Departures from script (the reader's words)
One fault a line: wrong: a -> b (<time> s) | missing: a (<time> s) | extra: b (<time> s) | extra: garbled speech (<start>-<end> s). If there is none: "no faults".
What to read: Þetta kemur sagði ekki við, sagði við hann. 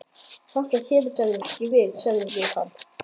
no faults